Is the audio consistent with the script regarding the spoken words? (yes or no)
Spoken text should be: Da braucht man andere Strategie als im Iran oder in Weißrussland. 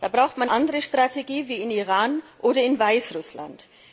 yes